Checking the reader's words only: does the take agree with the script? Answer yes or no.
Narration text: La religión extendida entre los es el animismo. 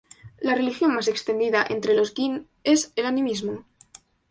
no